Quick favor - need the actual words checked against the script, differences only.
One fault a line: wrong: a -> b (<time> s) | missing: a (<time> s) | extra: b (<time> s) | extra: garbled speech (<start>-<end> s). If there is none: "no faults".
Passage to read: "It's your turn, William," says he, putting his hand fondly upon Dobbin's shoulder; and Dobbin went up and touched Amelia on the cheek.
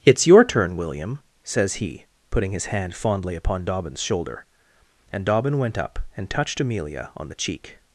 no faults